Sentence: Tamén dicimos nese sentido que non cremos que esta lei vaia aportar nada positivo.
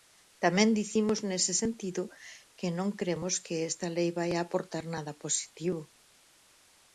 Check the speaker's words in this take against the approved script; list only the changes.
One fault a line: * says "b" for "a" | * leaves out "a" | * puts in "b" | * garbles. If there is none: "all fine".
all fine